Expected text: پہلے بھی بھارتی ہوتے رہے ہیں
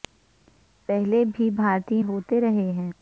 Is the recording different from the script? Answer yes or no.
no